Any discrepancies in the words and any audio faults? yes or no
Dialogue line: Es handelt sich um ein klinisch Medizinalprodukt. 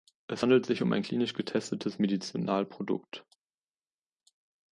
yes